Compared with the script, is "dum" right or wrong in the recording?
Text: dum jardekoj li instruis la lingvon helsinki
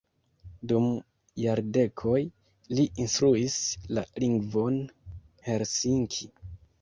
right